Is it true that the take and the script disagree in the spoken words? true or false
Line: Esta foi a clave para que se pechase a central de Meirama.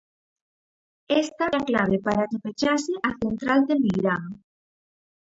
true